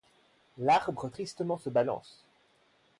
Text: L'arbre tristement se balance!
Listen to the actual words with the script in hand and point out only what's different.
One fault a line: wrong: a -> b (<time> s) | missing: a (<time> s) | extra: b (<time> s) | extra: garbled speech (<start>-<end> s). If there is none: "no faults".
no faults